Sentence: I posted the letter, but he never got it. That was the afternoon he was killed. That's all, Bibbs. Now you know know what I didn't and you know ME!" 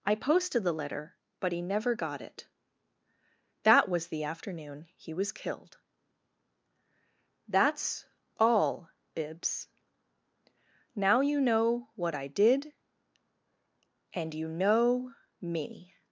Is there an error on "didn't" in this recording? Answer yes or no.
yes